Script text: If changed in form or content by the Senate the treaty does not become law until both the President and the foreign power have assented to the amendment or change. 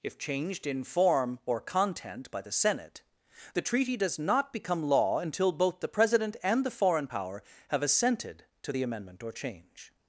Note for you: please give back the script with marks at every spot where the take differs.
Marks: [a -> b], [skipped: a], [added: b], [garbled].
If changed in form or content by the Senate the treaty does not become law until both the President and the foreign power have assented to the amendment or change.